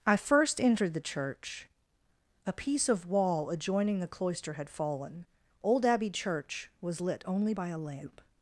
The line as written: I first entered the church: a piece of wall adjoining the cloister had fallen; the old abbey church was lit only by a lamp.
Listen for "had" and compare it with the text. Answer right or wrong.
right